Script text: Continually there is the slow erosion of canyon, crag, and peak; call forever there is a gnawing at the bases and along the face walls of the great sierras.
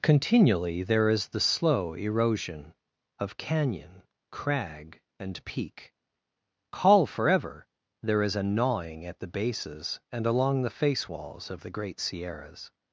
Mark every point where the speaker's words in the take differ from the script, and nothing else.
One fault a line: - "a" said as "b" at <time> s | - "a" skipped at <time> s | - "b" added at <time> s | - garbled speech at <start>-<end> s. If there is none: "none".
none